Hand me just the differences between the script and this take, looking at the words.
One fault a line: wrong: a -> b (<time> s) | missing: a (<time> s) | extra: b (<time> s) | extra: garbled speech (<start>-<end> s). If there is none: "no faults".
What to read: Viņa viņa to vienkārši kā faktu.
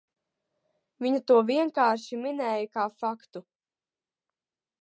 missing: viņa (1.2 s)
extra: minēja (2.2 s)